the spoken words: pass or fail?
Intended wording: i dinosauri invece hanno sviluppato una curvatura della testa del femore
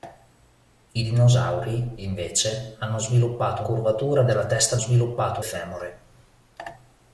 fail